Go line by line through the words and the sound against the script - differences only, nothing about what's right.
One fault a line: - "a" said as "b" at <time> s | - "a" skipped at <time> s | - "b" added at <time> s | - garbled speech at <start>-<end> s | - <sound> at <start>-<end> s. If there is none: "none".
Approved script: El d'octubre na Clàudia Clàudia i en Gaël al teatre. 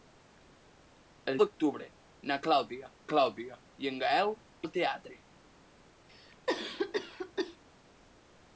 - cough at 6.1-7.6 s